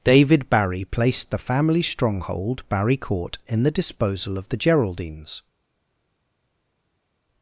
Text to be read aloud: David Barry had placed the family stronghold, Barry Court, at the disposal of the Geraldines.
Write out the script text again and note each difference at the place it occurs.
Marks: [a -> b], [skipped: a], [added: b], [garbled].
David Barry [skipped: had] placed the family stronghold, Barry Court, [at -> in] the disposal of the Geraldines.